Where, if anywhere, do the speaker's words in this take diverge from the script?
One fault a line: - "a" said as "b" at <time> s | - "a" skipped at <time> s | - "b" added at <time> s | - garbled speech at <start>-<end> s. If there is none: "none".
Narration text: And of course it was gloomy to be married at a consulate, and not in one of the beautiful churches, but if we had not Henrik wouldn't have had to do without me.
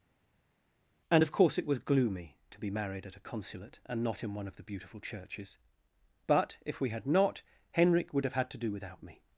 - "wouldn't" said as "would" at 8.1 s